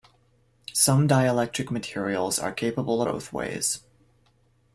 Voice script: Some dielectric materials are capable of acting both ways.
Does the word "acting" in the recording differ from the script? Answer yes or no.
yes